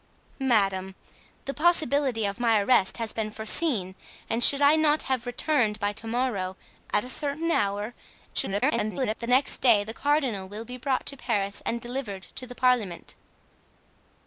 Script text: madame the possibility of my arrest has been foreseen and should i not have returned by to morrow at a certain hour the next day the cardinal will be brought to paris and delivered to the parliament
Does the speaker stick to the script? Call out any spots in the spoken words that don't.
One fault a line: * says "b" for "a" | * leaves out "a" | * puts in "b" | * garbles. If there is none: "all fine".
* garbles